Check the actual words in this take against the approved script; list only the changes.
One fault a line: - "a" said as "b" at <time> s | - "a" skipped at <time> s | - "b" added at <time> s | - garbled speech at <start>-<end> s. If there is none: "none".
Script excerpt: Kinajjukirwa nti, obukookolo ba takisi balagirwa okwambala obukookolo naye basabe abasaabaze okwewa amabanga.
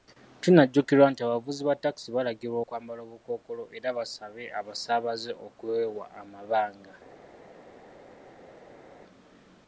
- "obukookolo" said as "abavuzi" at 1.2 s
- "naye" said as "era" at 3.8 s